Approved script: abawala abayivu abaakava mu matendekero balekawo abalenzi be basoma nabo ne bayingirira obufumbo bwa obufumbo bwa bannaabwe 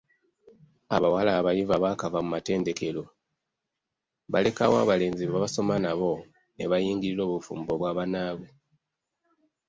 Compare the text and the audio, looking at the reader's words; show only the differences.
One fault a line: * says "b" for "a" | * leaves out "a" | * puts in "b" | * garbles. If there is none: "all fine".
* leaves out "obufumbo bwa"